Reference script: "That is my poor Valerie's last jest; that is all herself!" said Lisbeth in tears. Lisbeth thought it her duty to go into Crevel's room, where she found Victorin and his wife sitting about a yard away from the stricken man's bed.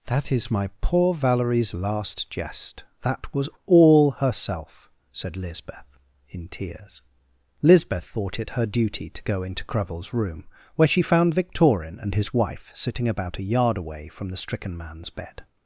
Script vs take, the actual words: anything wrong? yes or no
yes